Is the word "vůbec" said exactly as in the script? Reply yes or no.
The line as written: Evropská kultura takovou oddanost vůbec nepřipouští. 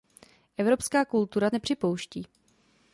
no